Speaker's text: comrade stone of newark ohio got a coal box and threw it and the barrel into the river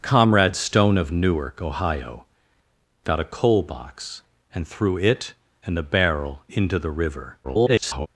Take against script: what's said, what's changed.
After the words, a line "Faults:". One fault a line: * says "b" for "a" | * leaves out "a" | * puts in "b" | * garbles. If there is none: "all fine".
comrade stone of newark ohio got a coal box and threw it and the barrel into the river [garbled]
Faults:
* garbles